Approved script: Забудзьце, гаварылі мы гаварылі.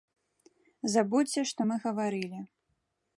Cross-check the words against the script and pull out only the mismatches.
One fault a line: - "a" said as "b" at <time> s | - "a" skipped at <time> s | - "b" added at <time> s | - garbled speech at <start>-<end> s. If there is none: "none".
- "гаварылі" said as "што" at 1.5 s